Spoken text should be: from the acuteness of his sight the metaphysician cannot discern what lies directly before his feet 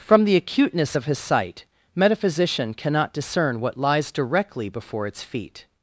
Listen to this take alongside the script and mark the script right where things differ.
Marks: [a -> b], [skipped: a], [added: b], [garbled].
from the acuteness of his sight [skipped: the] metaphysician cannot discern what lies directly before [his -> its] feet